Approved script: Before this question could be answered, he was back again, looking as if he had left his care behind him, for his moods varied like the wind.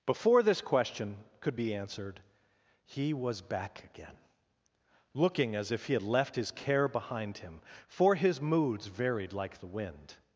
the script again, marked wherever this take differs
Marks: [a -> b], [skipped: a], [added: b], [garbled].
Before this question could be answered, he was back again, looking as if he had left his care behind him, for his moods varied like the wind.